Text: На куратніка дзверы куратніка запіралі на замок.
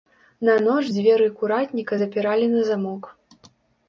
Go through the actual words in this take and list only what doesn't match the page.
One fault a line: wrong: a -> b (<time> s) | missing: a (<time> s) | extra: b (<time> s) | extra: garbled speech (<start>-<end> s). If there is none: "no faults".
wrong: куратніка -> ноч (0.7 s)